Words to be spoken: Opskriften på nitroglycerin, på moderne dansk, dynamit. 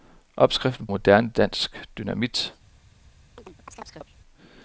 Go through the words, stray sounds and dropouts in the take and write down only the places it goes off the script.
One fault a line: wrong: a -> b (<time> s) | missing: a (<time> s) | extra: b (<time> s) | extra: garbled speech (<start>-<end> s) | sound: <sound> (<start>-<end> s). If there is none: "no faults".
missing: på nitroglycerin på (0.9 s)
sound: chirp (3.4-4.2 s)